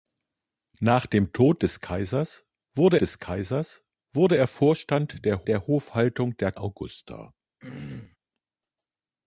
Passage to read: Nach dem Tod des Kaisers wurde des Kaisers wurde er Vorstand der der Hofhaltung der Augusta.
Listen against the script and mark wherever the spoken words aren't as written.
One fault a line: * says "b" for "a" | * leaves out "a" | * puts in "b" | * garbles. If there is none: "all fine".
all fine